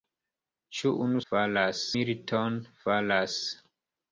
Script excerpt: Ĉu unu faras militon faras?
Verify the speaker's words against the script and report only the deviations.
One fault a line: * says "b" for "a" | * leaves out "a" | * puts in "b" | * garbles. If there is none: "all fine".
all fine